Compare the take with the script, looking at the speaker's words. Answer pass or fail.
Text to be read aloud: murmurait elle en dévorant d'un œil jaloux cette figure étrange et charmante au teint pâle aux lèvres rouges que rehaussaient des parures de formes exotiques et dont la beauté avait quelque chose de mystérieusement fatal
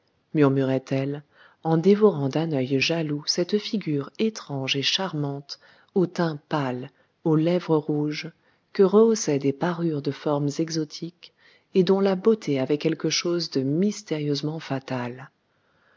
pass